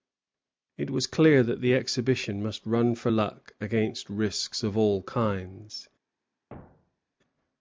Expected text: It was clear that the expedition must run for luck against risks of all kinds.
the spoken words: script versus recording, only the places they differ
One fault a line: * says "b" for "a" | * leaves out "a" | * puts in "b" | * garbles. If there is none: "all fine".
all fine